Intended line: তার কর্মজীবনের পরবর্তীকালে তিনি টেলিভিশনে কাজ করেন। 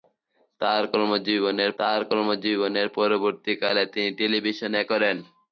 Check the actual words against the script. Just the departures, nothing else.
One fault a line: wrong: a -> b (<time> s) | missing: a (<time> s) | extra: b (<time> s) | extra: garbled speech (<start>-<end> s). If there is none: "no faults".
extra: তার কর্মজীবনের (1.8 s)
missing: কাজ (4.8 s)